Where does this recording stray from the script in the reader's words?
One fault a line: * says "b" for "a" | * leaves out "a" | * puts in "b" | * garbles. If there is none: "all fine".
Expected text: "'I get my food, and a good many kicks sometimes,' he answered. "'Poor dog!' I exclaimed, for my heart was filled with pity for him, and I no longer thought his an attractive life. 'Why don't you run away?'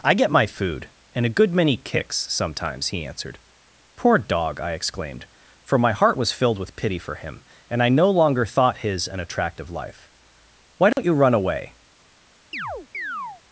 all fine